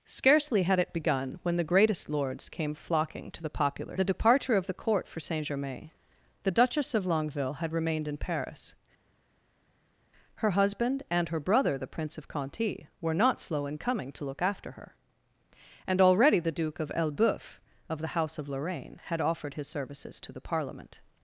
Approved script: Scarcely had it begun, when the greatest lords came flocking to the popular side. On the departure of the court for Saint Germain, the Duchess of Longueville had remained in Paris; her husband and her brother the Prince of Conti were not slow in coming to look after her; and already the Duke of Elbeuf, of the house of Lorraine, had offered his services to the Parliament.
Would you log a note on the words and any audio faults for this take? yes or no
yes